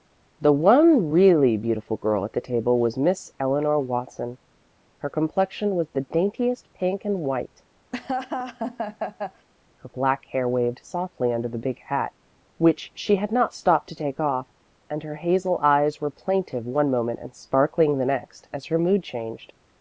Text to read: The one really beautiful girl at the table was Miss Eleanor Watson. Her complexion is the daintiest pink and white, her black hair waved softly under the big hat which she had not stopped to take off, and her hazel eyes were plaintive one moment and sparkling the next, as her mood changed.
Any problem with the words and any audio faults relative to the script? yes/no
yes